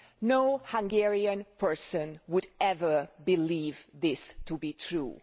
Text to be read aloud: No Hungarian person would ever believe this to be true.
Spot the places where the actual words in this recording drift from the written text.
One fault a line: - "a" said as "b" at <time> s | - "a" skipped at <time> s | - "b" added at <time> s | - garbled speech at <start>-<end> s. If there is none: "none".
none